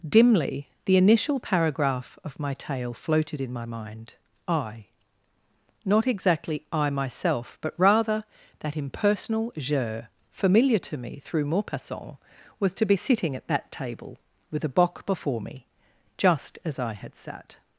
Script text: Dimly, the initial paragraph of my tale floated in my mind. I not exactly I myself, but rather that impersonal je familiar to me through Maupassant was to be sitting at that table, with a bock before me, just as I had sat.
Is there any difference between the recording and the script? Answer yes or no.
no